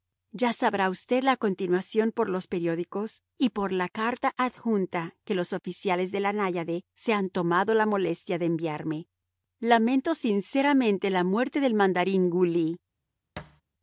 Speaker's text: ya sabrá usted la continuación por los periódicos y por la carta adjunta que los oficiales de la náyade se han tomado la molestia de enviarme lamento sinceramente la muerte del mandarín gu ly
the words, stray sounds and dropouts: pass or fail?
fail